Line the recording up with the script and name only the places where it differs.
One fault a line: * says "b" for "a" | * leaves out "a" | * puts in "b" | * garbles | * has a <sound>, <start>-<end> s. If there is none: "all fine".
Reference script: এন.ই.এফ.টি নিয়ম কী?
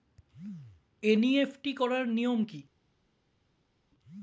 * puts in "করার"